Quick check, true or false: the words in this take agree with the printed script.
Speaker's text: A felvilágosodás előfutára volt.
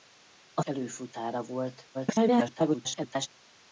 false